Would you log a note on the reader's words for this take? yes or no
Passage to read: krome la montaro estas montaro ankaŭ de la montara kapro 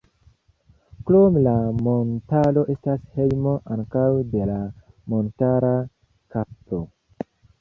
yes